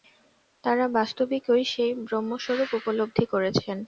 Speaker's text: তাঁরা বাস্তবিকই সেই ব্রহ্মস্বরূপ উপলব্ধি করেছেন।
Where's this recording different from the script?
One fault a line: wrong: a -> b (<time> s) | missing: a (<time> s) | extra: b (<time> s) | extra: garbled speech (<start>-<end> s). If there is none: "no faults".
no faults